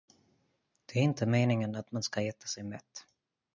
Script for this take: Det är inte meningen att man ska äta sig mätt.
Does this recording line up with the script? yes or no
yes